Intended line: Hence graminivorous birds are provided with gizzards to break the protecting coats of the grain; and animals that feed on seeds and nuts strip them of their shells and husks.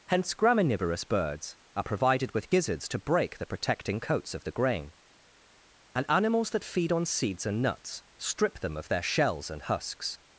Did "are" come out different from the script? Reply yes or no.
no